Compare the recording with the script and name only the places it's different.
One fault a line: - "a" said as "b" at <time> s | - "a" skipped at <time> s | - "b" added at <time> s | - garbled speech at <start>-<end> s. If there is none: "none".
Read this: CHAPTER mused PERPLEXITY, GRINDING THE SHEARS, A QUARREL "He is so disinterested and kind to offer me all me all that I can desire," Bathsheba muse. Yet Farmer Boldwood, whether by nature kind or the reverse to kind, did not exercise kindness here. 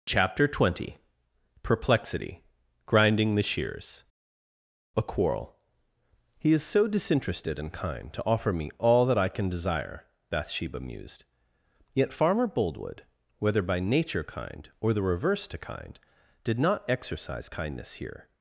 - "mused" said as "twenty" at 0.5 s
- "me all" skipped at 9.1 s
- "muse" said as "mused" at 10.8 s